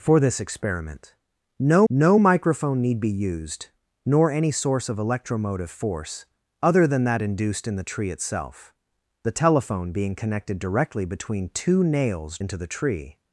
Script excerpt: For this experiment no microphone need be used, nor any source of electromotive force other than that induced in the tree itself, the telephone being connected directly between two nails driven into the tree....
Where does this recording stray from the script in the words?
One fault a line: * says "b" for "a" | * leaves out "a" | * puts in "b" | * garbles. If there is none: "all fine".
* puts in "no"
* leaves out "driven"